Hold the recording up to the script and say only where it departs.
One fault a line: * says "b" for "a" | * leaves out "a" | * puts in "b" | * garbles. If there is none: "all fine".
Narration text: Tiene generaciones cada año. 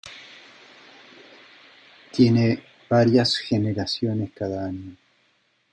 * puts in "varias"